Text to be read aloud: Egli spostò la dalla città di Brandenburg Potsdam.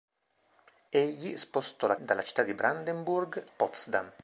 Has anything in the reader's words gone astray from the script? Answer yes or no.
no